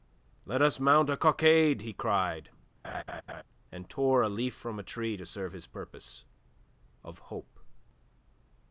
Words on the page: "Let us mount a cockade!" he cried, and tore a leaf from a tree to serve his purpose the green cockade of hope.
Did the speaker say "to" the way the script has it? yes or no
yes